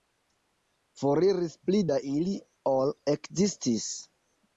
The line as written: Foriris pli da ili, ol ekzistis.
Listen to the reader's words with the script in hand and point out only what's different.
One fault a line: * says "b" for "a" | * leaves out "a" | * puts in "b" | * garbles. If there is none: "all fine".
all fine